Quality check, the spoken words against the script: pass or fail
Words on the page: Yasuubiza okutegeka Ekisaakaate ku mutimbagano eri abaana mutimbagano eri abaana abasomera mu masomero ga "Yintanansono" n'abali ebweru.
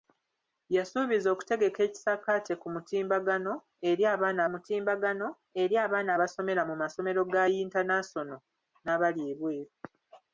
pass